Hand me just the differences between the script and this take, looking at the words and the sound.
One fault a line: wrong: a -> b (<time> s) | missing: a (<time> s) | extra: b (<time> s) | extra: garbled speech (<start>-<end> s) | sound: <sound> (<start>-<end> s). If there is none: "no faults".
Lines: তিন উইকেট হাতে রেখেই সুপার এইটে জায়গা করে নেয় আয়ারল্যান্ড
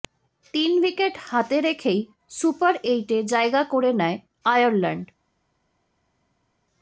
no faults